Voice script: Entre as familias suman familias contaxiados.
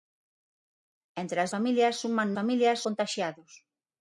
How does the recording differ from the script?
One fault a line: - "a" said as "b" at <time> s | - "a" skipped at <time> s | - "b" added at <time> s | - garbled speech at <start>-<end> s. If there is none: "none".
none